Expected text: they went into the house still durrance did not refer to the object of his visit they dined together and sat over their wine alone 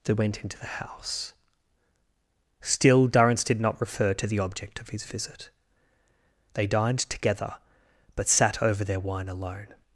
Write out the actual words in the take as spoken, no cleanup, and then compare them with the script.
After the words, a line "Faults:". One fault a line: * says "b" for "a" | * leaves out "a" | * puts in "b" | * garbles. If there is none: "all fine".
they went into the house still durrance did not refer to the object of his visit they dined together but sat over their wine alone
Faults:
* says "but" for "and"